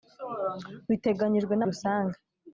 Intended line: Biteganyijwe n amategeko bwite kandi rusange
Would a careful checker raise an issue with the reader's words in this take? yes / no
yes